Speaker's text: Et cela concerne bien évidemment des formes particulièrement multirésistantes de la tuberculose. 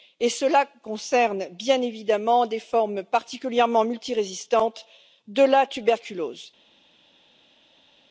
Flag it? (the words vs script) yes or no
no